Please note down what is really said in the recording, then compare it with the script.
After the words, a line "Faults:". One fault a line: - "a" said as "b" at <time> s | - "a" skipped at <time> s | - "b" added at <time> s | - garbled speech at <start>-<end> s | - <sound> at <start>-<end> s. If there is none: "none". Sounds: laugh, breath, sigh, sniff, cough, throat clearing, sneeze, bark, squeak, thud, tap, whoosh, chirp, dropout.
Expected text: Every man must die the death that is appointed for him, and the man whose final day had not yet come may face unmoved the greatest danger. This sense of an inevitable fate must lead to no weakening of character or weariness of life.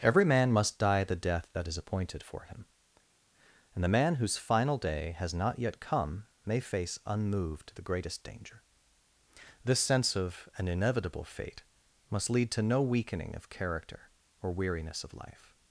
Every man must die the death that is appointed for him, and the man whose final day has not yet come may face unmoved the greatest danger. This sense of an inevitable fate must lead to no weakening of character or weariness of life.
Faults:
- "had" said as "has" at 5.2 s